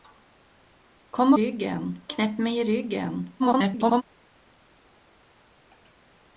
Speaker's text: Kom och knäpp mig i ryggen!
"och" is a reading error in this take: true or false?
true